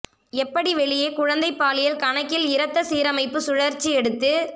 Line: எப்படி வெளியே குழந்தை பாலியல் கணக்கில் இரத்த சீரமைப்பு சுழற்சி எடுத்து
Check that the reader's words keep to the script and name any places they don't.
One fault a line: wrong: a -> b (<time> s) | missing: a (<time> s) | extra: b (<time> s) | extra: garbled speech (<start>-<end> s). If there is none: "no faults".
no faults